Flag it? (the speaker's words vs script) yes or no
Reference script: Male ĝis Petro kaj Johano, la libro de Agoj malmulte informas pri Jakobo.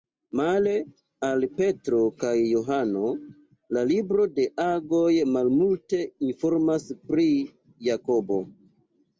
yes